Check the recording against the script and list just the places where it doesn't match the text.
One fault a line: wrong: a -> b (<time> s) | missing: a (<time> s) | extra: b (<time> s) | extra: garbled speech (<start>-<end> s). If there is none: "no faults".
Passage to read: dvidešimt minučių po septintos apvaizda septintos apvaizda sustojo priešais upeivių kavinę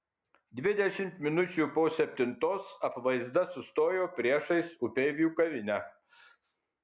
missing: septintos apvaizda (3.4 s)